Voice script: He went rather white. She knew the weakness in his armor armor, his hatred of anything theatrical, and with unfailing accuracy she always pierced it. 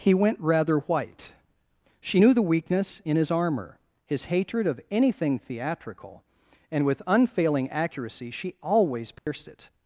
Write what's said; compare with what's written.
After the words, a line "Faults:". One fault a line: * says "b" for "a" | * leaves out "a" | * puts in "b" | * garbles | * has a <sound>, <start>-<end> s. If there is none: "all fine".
He went rather white. She knew the weakness in his armor, his hatred of anything theatrical, and with unfailing accuracy she always pierced it.
Faults:
* leaves out "armor"
* has a dropout, 9.2-9.3 s